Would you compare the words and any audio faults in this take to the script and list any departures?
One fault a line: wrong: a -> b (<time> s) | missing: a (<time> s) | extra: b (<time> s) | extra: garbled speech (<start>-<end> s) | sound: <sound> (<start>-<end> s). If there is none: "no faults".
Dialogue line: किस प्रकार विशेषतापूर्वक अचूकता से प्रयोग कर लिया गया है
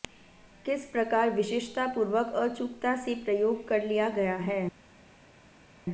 no faults